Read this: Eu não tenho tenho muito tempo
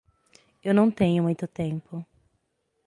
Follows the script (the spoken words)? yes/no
no